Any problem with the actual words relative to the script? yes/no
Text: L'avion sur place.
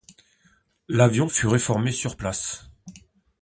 yes